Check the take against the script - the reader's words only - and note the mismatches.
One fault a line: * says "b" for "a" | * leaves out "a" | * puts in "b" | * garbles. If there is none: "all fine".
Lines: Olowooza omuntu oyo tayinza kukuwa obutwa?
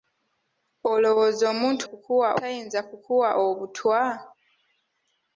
* says "kukuwa" for "oyo"